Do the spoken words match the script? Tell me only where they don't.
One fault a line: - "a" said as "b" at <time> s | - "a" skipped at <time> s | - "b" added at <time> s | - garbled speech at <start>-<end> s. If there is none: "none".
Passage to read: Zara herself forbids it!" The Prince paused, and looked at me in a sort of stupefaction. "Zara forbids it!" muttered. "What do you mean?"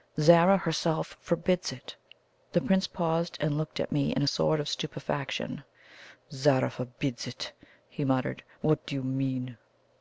- "he" added at 7.9 s